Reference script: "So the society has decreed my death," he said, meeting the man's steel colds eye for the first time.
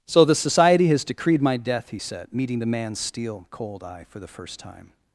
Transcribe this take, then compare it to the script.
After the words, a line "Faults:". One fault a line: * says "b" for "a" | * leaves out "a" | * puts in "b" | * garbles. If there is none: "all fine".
"So the society has decreed my death," he said, meeting the man's steel cold eye for the first time.
Faults:
* says "cold" for "colds"